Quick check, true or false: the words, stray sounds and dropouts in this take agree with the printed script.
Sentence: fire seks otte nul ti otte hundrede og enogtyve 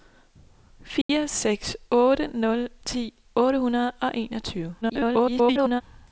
false